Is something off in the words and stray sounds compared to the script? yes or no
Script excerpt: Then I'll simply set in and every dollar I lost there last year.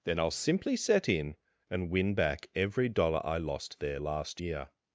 yes